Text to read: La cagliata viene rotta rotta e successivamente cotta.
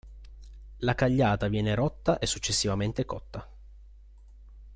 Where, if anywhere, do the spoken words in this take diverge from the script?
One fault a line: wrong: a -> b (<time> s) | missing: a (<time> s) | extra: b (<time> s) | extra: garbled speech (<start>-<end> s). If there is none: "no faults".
missing: rotta (2.2 s)